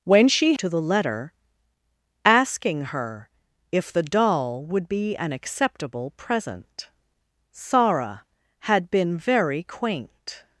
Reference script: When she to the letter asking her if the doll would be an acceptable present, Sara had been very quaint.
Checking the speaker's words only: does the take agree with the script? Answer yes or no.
yes